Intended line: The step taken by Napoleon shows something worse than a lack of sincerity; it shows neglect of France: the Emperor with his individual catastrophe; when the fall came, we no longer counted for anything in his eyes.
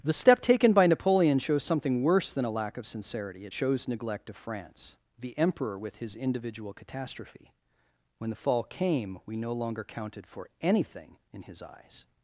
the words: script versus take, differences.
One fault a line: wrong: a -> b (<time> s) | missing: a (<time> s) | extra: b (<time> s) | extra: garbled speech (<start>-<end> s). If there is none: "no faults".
no faults